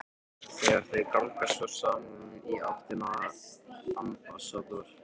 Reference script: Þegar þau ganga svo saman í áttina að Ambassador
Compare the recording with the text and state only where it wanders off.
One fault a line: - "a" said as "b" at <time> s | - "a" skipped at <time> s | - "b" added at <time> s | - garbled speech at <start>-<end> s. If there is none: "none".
none